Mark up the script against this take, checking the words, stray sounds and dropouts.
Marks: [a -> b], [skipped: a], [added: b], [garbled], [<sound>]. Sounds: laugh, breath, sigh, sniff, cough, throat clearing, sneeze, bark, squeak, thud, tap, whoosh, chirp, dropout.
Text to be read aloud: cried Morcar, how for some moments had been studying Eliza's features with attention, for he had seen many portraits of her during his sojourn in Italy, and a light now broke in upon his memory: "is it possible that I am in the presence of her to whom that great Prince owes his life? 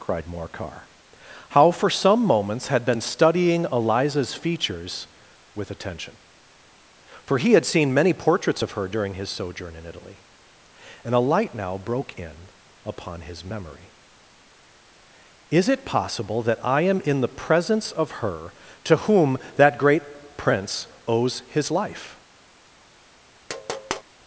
cried Morcar, how for some moments had been studying Eliza's features with attention, for he had seen many portraits of her during his sojourn in Italy, and a light now broke in upon his memory: "is it possible that I am in the presence of her to whom that great Prince owes his life? [tap]